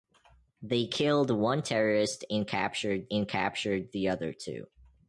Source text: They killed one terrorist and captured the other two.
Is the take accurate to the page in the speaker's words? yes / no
no